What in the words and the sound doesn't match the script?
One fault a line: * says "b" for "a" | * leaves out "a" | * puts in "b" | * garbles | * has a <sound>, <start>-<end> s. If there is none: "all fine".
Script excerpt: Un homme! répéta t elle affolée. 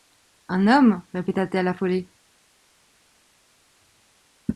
all fine